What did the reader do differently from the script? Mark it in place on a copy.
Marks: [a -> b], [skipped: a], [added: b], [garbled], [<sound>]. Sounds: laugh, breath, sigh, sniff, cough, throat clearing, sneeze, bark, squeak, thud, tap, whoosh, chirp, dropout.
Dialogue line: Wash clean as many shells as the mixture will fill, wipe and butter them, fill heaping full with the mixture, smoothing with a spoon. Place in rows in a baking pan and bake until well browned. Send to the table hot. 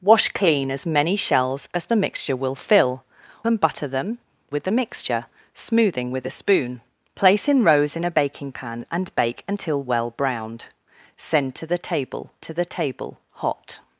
Wash clean as many shells as the mixture will fill, [skipped: wipe] and butter them, [skipped: fill heaping full] with the mixture, smoothing with a spoon. Place in rows in a baking pan and bake until well browned. Send to the table [added: to the table] hot.